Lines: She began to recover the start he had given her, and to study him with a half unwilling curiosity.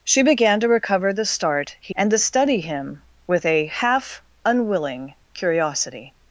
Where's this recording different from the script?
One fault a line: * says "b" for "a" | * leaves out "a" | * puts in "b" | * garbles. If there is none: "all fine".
* leaves out "had given her"